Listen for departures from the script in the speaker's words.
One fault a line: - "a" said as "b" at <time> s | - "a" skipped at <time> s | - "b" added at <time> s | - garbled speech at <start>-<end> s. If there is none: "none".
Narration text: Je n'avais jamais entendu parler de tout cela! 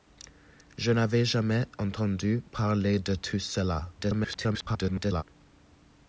- garbled speech at 4.0-5.2 s